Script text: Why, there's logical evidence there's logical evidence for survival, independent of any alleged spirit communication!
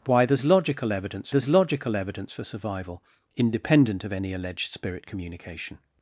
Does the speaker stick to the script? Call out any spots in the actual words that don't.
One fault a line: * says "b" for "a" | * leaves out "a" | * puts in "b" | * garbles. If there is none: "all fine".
all fine